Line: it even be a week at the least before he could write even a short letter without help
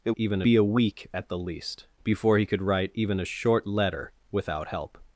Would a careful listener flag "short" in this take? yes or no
no